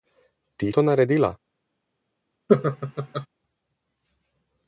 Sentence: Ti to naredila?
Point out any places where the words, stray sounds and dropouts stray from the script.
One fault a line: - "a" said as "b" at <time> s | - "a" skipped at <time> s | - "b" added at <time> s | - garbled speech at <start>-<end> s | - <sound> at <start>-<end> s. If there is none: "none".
- laugh at 2.5-3.3 s